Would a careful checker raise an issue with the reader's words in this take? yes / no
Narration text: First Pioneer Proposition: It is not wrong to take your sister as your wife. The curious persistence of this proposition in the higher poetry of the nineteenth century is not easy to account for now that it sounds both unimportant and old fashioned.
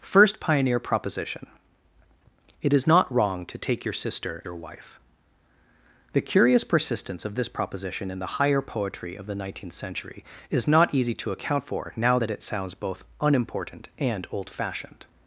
yes